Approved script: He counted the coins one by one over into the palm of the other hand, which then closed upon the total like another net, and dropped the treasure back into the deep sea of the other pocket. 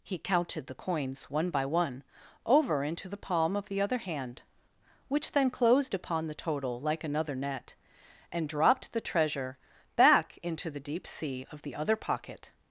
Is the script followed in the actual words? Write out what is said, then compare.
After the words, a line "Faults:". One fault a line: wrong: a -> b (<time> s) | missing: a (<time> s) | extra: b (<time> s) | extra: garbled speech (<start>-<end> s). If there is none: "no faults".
He counted the coins one by one over into the palm of the other hand, which then closed upon the total like another net, and dropped the treasure back into the deep sea of the other pocket.
Faults:
no faults